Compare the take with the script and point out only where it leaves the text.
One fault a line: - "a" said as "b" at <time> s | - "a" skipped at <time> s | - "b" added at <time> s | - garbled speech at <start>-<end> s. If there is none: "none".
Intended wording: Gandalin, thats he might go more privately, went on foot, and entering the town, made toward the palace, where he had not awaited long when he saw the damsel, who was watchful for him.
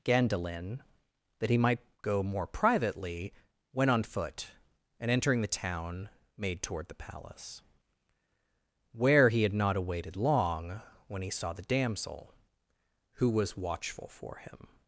- "thats" said as "that" at 1.4 s